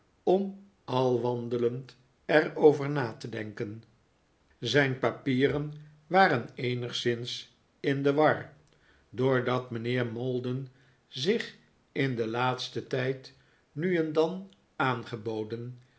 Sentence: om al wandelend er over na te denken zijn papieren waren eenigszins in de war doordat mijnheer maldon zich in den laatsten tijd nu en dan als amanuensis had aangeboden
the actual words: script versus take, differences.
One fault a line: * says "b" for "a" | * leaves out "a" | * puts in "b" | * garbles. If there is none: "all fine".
* leaves out "als amanuensis had"